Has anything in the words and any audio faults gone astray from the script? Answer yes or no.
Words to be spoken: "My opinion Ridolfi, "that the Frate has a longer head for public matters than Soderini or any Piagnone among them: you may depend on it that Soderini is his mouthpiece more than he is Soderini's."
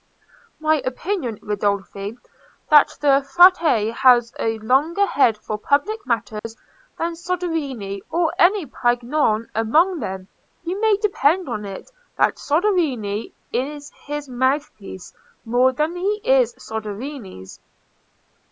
yes